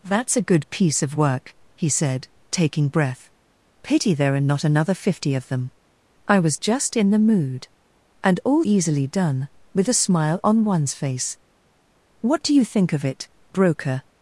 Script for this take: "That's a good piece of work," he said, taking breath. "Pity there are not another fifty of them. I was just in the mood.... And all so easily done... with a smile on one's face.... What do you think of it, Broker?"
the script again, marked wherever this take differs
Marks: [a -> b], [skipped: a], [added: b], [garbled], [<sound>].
"That's a good piece of work," he said, taking breath. "Pity there are not another fifty of them. I was just in the mood.... And all [skipped: so] easily done... with a smile on one's face.... What do you think of it, Broker?"